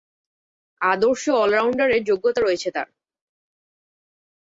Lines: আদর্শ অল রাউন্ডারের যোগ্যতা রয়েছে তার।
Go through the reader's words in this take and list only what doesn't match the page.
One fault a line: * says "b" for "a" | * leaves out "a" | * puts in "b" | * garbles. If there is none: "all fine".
all fine